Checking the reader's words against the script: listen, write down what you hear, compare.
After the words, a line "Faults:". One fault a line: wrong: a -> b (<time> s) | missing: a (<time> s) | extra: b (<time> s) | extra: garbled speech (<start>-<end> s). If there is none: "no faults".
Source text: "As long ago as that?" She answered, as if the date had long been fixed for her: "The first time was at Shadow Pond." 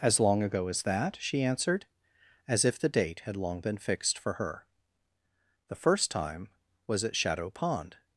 "As long ago as that?" She answered, as if the date had long been fixed for her: "The first time was at Shadow Pond."
Faults:
no faults